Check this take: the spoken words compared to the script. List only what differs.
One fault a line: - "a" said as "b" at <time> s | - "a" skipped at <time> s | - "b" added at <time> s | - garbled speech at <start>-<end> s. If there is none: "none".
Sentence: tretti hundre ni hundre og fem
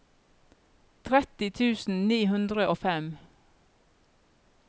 - "hundre" said as "tusen" at 1.6 s